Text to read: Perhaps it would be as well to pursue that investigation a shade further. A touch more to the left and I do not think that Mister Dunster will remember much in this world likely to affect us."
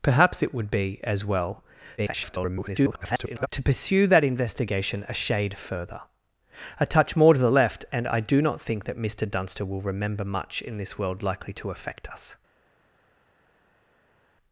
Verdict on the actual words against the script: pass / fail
fail